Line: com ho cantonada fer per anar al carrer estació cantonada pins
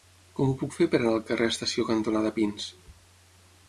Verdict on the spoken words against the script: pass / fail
fail